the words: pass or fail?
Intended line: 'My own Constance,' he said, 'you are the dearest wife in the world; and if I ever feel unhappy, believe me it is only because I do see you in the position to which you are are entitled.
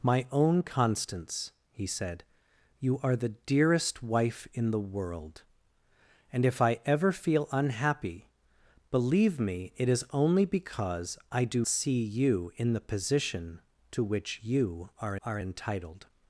pass